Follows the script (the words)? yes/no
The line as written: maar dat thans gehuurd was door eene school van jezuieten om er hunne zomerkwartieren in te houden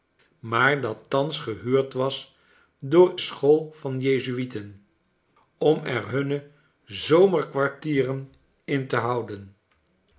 no